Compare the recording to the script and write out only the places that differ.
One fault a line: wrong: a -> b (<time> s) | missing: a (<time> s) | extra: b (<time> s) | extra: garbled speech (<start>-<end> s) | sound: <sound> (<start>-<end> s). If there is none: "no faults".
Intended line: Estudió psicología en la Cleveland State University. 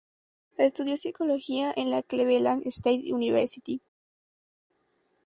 no faults